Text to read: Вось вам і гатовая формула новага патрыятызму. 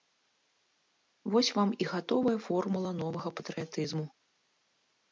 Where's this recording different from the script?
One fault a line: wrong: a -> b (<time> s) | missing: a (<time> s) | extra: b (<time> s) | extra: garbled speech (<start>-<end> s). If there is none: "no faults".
no faults